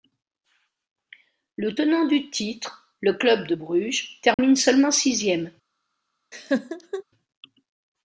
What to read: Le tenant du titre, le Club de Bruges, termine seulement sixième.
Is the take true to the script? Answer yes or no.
yes